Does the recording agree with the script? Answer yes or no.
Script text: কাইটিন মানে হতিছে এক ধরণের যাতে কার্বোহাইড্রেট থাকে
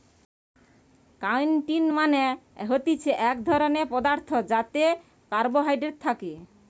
no